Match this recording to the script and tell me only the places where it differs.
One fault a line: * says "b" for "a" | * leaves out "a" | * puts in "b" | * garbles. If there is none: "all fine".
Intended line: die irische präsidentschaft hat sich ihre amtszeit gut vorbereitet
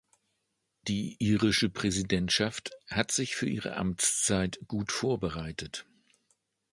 * puts in "für"